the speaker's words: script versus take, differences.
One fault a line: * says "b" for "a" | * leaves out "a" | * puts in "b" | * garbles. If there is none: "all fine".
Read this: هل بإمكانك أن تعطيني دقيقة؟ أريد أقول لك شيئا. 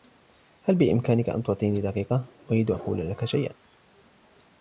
all fine